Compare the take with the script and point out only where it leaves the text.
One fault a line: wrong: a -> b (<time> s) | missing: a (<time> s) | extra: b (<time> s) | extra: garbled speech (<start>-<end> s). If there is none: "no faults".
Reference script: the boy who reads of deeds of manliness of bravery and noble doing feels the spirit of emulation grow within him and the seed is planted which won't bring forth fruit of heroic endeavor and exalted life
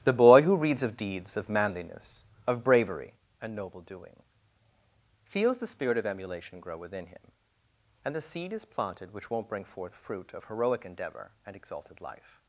no faults